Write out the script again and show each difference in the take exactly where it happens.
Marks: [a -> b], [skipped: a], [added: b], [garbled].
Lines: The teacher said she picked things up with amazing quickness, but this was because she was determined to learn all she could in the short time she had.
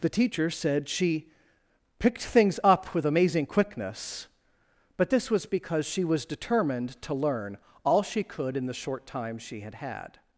The teacher said she picked things up with amazing quickness, but this was because she was determined to learn all she could in the short time she had. [added: had]